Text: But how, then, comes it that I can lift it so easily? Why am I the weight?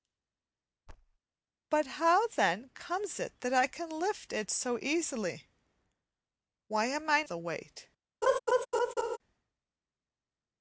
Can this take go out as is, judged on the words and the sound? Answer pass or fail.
fail